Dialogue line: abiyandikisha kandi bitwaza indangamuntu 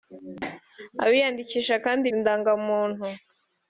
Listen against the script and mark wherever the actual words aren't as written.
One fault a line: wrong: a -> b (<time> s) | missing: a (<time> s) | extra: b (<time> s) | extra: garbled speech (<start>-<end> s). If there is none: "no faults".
missing: bitwaza (2.0 s)